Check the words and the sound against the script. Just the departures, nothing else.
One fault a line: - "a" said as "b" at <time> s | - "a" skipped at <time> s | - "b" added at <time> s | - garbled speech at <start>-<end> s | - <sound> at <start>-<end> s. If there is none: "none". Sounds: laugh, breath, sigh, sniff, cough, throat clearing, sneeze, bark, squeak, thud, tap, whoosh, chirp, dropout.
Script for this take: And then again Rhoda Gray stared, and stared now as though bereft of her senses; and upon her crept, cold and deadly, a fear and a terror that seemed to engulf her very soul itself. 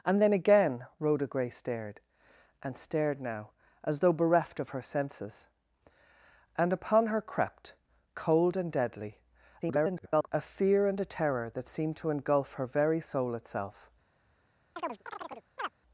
- garbled speech at 9.6-10.3 s
- chirp at 14.8-15.7 s